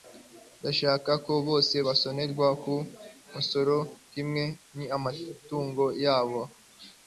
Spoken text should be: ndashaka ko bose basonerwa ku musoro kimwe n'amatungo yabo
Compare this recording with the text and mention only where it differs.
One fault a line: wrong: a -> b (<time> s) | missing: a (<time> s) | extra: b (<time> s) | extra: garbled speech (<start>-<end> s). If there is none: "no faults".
no faults